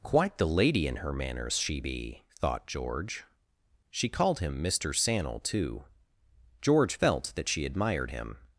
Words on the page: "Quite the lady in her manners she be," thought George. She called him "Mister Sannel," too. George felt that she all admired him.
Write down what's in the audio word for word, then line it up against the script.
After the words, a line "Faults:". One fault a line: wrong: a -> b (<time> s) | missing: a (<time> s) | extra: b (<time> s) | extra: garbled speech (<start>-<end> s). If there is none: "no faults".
"Quite the lady in her manners she be," thought George. She called him "Mister Sannel," too. George felt that she admired him.
Faults:
missing: all (7.7 s)